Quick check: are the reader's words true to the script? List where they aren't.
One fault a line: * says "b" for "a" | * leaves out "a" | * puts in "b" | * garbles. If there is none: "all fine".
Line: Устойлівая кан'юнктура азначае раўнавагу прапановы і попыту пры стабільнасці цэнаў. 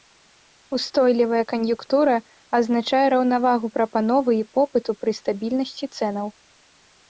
all fine